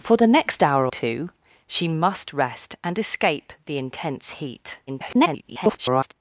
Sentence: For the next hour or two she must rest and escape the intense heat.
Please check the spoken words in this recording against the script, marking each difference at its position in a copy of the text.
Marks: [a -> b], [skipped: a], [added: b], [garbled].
For the next hour [skipped: or] two she must rest and escape the intense heat. [garbled]